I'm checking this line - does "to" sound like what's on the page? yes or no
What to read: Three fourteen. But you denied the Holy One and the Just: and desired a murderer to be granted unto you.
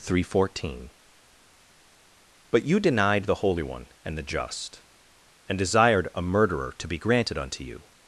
yes